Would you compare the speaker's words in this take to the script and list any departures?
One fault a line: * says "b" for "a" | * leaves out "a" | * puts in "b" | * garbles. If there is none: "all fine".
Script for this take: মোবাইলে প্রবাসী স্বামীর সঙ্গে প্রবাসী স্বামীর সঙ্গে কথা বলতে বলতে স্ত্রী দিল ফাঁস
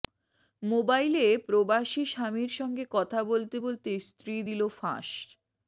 * leaves out "প্রবাসী স্বামীর সঙ্গে"